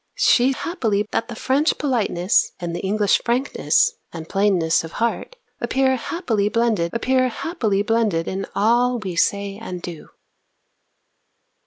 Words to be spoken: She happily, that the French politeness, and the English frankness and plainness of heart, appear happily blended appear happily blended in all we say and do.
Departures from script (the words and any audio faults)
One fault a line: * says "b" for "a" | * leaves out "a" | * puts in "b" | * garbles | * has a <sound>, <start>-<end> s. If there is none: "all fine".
all fine